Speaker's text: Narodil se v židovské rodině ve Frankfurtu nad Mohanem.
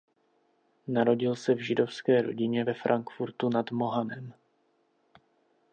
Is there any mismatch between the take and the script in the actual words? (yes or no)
no